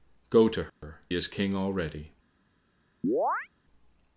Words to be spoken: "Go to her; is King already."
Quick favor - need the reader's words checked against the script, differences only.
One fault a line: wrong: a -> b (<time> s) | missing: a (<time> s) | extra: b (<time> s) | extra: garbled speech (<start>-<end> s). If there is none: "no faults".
no faults